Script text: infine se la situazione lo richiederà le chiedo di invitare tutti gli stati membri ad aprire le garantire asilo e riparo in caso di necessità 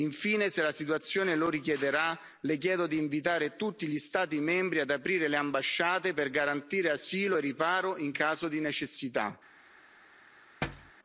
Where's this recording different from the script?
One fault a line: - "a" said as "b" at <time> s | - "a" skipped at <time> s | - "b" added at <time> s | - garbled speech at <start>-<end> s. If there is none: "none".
- "ambasciate per" added at 5.3 s